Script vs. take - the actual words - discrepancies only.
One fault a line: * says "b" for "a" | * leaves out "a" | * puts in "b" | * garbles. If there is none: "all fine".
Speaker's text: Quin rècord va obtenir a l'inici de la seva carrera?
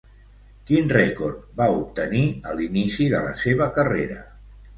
all fine